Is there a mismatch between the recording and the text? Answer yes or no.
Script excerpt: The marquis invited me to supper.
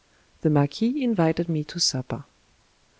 no